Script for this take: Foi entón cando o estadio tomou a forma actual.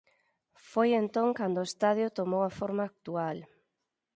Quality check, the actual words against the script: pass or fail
pass